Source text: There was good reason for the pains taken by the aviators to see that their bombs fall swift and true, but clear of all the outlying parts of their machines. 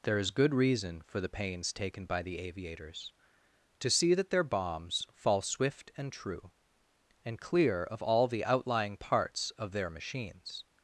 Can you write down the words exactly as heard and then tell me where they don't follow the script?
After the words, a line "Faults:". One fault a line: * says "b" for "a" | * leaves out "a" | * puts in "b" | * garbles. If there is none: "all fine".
There is good reason for the pains taken by the aviators to see that their bombs fall swift and true, and clear of all the outlying parts of their machines.
Faults:
* says "is" for "was"
* says "and" for "but"